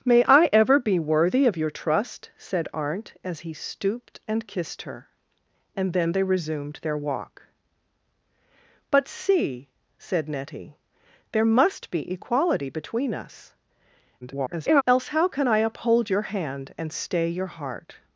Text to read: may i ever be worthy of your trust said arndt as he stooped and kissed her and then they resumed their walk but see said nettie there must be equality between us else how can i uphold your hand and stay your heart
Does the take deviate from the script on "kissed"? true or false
false